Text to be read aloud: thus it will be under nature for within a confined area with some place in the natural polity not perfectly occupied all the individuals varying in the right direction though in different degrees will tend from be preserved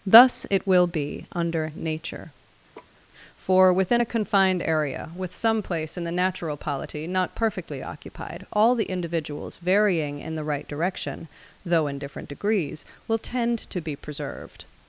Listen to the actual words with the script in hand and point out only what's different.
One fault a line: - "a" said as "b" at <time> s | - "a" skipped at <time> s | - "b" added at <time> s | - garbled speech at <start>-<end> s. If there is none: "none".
- "from" said as "to" at 13.7 s